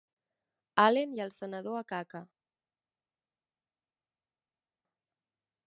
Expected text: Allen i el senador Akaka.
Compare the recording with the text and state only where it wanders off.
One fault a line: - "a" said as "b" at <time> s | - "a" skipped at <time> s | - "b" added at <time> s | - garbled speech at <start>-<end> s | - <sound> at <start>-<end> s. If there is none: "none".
none